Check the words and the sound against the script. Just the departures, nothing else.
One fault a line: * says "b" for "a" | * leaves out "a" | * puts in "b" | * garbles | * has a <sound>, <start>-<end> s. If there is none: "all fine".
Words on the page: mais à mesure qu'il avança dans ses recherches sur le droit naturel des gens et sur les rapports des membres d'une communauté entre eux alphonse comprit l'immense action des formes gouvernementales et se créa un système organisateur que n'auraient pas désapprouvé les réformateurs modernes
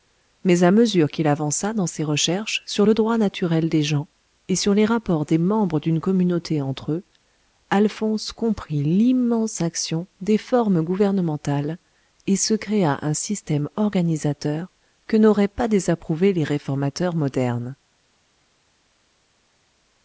all fine